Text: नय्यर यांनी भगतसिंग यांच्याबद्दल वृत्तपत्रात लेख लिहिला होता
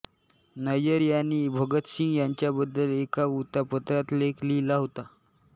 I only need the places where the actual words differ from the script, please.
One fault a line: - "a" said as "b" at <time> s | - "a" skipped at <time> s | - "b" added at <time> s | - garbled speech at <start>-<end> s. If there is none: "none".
- "एका" added at 2.9 s